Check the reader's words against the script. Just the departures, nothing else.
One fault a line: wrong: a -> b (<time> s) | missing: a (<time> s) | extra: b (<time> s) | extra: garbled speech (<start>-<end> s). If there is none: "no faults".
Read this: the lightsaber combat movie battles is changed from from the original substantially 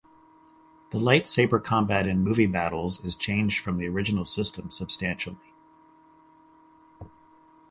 extra: in (2.1 s)
missing: from (3.8 s)
extra: system (4.2 s)